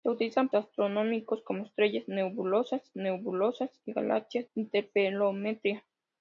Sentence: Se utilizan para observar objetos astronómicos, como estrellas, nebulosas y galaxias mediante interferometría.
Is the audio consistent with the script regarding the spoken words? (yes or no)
no